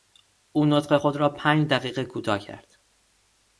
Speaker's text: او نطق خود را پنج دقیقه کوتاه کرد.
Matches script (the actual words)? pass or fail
pass